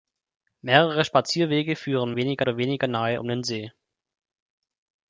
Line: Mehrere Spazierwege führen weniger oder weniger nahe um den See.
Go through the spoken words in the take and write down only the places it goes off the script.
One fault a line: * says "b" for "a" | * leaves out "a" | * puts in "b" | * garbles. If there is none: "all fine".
all fine